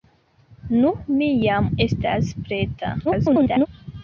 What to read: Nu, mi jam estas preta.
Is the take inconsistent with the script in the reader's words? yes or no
yes